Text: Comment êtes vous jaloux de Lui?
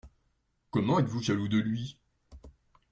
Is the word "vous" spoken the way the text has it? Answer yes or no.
yes